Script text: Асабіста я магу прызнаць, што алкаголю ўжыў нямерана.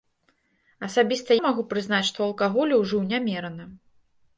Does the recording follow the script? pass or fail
fail